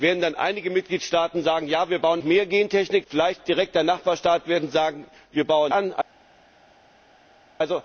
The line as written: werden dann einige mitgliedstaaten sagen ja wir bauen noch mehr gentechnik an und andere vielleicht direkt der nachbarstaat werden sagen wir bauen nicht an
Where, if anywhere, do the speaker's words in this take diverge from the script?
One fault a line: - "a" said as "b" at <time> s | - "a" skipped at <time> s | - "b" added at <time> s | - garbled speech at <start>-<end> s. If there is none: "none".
- "noch" skipped at 2.2 s
- "an und andere" skipped at 3.1 s
- "nicht" skipped at 5.7 s